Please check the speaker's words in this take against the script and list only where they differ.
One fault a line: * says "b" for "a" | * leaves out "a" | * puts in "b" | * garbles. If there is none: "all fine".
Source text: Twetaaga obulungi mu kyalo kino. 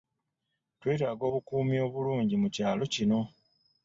* puts in "obukuumi"